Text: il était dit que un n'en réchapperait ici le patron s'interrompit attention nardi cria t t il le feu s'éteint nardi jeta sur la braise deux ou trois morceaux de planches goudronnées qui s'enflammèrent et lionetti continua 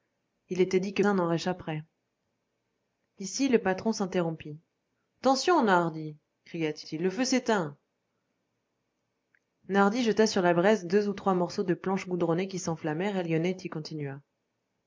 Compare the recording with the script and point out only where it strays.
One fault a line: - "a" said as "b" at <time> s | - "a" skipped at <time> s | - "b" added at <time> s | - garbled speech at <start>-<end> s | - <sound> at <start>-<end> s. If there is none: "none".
none